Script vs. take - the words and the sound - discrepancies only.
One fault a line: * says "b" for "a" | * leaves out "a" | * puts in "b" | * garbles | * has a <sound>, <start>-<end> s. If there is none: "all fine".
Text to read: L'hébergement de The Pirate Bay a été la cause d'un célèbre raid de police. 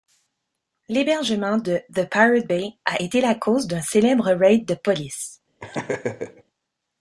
* has a laugh, 5.6-6.4 s